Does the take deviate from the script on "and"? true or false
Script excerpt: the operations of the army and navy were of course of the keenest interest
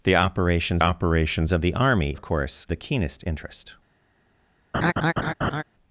true